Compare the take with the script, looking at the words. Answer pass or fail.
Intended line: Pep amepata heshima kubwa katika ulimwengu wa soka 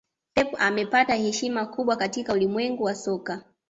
pass